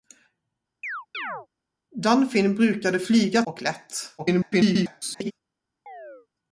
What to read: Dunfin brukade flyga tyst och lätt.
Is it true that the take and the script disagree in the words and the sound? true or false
true